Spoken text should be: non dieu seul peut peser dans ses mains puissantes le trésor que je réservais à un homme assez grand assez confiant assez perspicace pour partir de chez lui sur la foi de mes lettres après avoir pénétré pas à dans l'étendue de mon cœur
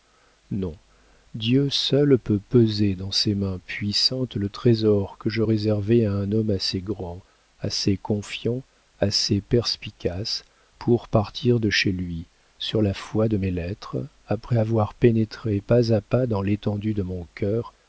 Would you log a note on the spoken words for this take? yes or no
yes